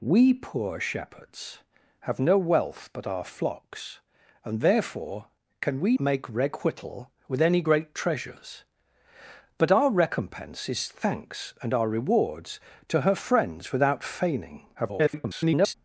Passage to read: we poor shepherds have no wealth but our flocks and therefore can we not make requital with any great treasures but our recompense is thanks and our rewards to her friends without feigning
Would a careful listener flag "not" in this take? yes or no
yes